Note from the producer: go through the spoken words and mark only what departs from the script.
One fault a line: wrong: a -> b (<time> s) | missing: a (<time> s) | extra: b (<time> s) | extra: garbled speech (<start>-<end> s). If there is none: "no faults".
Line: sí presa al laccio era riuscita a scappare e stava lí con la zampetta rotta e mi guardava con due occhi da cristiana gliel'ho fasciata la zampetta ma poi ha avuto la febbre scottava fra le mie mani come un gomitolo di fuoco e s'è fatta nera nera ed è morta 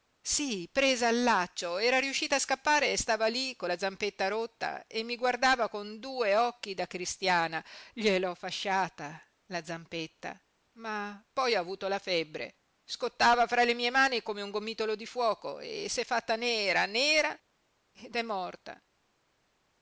no faults